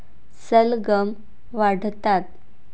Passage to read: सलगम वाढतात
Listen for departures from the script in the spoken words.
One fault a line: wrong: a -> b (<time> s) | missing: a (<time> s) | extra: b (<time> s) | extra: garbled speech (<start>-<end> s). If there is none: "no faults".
no faults